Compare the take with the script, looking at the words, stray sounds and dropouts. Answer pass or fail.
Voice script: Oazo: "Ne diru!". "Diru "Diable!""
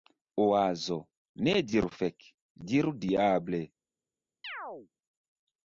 fail